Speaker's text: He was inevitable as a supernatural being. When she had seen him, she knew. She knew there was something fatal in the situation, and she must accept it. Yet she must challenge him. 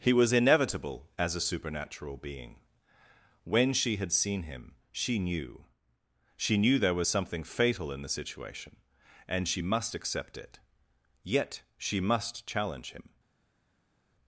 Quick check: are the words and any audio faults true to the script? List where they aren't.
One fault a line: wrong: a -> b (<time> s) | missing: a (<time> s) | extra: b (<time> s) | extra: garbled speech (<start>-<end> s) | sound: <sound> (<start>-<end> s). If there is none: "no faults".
no faults